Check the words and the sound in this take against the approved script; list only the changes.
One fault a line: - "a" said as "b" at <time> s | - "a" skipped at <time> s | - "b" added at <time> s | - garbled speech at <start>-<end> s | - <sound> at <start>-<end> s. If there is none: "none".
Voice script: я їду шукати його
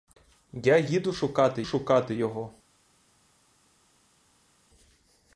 - "шукати" added at 1.6 s